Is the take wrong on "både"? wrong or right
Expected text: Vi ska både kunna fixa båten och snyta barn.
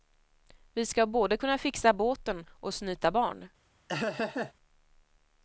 right